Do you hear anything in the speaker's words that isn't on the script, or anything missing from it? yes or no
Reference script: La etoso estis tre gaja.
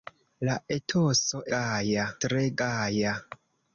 yes